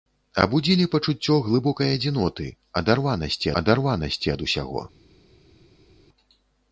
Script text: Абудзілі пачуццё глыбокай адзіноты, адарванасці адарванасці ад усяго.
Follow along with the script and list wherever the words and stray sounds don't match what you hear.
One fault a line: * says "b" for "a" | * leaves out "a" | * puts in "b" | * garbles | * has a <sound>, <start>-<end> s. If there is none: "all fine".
all fine